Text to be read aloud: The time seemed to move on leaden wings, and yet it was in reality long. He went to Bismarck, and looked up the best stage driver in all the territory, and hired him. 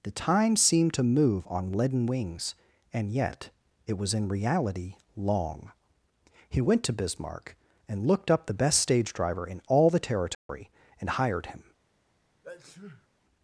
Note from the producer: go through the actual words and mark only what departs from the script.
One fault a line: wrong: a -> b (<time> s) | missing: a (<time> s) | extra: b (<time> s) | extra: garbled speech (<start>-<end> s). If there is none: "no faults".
no faults